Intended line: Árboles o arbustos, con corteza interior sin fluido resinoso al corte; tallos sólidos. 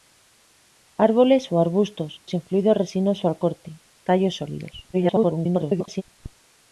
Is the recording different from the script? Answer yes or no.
yes